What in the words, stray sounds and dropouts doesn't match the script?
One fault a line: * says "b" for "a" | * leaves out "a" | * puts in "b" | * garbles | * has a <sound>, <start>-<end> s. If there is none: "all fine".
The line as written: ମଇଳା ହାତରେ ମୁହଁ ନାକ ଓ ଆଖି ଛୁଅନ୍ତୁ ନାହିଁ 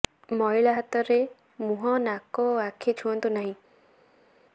all fine